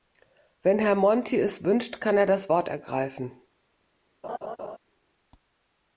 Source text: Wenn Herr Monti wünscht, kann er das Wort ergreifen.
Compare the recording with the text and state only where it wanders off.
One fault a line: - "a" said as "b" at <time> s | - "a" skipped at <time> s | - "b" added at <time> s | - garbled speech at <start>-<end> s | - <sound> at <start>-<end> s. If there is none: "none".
- "es" added at 1.4 s
- laugh at 4.2-4.8 s